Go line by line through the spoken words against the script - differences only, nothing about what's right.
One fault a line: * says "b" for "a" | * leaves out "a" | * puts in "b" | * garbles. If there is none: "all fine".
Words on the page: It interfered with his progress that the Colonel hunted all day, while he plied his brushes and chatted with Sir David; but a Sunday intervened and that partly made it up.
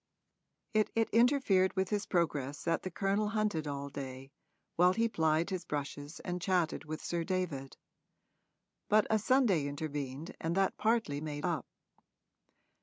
* puts in "it"
* leaves out "it"